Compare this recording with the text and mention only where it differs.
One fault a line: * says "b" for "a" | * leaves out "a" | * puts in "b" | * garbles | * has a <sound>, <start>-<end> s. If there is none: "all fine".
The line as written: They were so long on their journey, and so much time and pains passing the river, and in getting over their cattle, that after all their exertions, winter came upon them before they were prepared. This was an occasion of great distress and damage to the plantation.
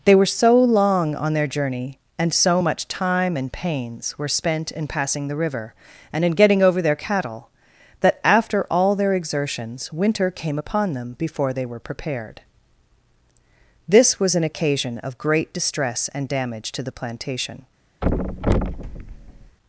* puts in "were spent in"
* has a thud, 18.0-19.6 s